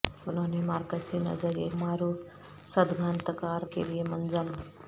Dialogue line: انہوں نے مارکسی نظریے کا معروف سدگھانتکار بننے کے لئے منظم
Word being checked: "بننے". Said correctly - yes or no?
no